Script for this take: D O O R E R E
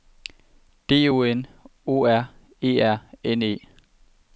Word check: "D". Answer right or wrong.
right